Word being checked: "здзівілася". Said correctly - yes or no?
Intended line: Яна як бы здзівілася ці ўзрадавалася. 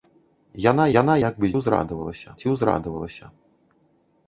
no